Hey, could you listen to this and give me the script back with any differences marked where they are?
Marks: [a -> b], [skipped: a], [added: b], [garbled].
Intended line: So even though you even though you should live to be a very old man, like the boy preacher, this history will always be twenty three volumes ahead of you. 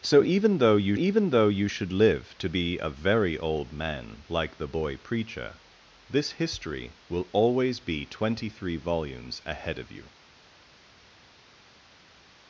So even though you even though you should live to be a very old man, like the boy preacher, this history will always be twenty three volumes ahead of you.